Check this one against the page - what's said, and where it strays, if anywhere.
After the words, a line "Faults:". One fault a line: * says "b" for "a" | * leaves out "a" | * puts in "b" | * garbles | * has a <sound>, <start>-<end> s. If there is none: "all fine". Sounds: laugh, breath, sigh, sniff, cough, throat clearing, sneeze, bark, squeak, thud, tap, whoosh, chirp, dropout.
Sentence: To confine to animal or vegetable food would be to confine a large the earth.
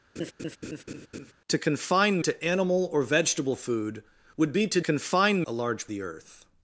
To confine to animal or vegetable food would be to confine a large the earth.
Faults:
* has a laugh, 0.2-1.3 s